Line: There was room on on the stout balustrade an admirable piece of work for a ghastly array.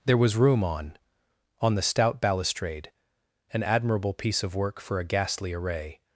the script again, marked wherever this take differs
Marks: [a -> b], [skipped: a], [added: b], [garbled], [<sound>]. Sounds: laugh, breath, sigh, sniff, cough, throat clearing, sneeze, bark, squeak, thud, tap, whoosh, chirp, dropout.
There was room on on the stout balustrade an admirable piece of work for a ghastly array.